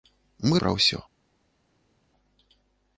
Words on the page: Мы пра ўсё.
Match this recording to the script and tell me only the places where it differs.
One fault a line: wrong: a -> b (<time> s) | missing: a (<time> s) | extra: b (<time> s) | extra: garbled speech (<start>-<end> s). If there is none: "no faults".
no faults